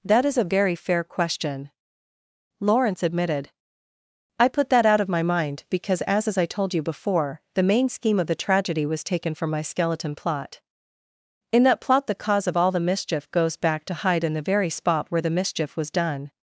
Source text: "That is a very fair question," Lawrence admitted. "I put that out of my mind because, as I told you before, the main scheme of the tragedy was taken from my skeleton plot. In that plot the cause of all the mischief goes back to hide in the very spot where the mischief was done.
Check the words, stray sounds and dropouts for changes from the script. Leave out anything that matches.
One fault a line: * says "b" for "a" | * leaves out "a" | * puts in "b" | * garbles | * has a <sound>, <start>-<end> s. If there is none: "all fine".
* puts in "as"